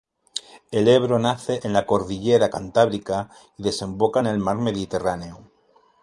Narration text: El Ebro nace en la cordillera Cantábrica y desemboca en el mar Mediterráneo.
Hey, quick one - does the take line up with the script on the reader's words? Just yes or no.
yes